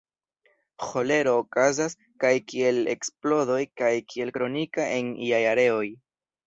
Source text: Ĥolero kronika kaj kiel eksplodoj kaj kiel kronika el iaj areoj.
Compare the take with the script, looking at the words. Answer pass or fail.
fail